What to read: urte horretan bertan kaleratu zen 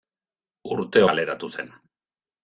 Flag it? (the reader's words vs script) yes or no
yes